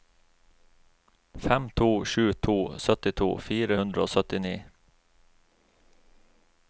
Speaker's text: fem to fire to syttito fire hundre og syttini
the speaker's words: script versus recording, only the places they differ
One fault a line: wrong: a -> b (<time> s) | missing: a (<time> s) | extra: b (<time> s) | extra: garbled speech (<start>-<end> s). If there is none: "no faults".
wrong: fire -> sju (2.0 s)